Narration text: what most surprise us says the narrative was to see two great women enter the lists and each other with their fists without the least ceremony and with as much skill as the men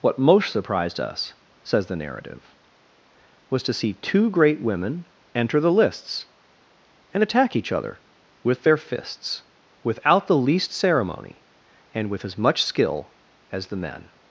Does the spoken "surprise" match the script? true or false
false